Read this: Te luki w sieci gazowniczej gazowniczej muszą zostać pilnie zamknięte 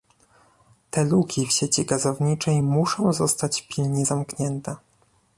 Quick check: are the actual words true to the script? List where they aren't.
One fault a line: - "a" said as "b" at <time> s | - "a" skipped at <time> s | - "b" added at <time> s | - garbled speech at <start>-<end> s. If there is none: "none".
- "gazowniczej" skipped at 2.6 s